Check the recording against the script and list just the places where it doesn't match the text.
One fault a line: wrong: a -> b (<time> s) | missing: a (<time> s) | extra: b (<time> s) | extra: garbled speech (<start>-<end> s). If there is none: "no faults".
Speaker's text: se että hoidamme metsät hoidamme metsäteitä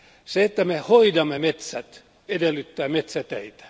extra: me (0.7 s)
wrong: hoidamme -> edellyttää (2.3 s)